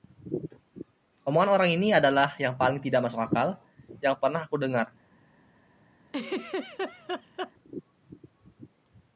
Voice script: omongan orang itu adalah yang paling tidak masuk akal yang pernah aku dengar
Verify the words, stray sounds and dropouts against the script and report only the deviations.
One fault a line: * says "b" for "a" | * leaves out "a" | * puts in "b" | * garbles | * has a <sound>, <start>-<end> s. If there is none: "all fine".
* says "ini" for "itu"
* has a laugh, 6.1-7.5 s